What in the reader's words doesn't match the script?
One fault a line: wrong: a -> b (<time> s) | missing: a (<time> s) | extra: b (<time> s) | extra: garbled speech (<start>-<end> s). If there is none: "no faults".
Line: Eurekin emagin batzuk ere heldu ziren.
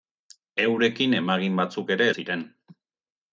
missing: heldu (2.1 s)